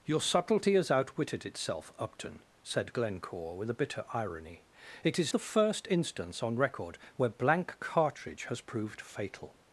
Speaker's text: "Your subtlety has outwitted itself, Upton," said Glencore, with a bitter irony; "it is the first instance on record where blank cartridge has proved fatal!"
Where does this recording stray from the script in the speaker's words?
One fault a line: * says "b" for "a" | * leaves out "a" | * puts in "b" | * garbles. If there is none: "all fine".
all fine